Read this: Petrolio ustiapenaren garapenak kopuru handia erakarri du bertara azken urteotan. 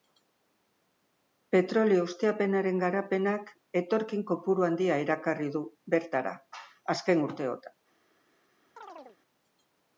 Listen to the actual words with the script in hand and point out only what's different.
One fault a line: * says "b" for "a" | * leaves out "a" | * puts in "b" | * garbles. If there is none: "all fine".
* puts in "etorkin"